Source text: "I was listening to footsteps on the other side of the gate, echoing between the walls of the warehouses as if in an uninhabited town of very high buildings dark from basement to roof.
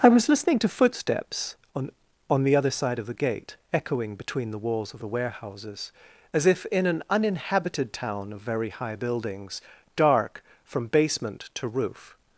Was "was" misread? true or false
false